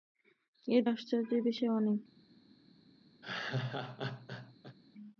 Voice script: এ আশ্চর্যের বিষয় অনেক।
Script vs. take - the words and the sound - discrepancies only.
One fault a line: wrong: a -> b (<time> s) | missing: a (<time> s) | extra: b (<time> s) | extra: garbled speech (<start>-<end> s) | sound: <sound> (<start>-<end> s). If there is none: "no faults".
sound: laugh (3.2-4.8 s)